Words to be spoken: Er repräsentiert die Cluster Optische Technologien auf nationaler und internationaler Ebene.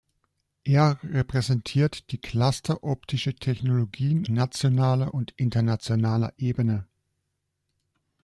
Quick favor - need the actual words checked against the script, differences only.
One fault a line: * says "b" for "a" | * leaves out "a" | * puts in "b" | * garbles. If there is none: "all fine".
* leaves out "auf"